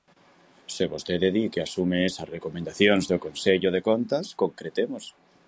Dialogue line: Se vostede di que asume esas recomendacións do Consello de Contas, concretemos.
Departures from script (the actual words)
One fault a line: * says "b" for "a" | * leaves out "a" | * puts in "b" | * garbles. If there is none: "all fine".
all fine